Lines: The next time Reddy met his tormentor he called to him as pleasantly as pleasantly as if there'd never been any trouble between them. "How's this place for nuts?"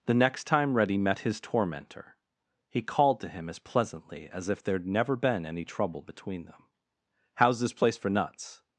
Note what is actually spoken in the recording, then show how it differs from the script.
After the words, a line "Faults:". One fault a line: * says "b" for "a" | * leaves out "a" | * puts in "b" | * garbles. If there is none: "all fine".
The next time Reddy met his tormentor he called to him as pleasantly as if there'd never been any trouble between them. "How's this place for nuts?"
Faults:
* leaves out "pleasantly as"